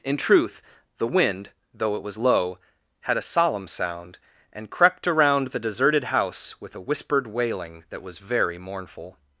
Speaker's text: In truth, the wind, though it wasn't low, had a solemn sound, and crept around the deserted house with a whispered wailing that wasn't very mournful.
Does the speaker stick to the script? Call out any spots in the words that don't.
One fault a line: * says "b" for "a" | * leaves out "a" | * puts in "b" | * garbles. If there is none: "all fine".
* says "was" for "wasn't"
* says "was" for "wasn't"